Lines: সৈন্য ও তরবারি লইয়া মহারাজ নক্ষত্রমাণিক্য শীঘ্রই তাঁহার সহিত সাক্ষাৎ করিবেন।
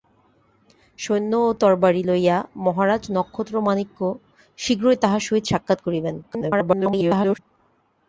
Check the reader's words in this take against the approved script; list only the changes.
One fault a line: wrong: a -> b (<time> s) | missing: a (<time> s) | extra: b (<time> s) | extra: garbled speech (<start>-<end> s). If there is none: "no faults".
extra: garbled speech (6.2-7.4 s)